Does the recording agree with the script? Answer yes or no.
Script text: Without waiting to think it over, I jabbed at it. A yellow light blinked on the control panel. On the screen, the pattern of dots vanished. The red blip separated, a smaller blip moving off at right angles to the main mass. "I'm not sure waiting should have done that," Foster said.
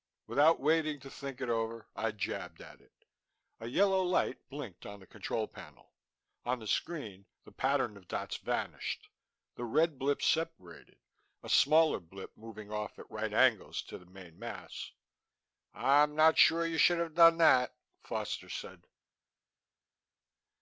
no